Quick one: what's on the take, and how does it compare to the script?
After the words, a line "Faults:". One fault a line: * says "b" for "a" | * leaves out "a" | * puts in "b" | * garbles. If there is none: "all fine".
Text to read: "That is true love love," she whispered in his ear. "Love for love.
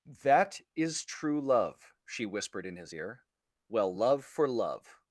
"That is true love," she whispered in his ear. "Well, love for love.
Faults:
* leaves out "love"
* puts in "Well"